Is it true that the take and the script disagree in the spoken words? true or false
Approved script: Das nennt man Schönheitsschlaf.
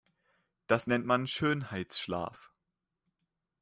false